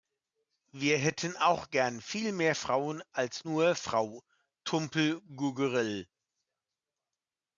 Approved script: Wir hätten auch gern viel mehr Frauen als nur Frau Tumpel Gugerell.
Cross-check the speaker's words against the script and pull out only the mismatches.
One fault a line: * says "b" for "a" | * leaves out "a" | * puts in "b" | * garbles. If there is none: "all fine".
all fine